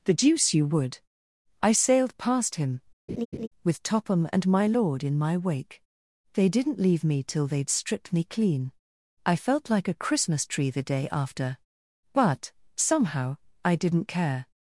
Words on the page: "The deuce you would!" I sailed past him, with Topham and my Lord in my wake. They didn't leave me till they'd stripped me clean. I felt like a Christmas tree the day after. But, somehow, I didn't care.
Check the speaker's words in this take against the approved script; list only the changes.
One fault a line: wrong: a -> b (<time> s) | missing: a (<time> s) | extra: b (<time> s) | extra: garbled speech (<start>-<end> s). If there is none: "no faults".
no faults